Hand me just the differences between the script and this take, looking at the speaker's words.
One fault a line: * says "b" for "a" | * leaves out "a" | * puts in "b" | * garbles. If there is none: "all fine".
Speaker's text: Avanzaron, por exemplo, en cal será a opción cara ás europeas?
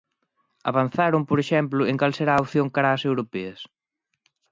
all fine